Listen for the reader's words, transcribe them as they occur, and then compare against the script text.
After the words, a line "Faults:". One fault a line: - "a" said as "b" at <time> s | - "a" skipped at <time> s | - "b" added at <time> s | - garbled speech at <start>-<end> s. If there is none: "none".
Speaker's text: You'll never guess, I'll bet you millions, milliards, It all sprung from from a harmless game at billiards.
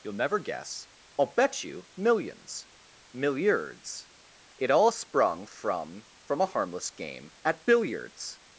You'll never guess, I'll bet you millions, milliards, It all sprung from from a harmless game at billiards.
Faults:
none